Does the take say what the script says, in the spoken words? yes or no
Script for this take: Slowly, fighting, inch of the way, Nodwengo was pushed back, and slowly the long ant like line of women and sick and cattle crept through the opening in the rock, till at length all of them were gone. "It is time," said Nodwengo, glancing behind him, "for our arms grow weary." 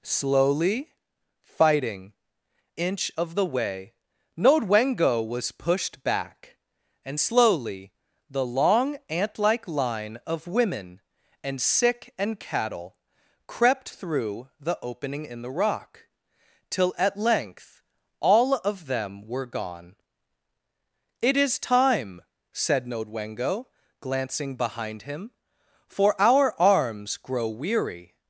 yes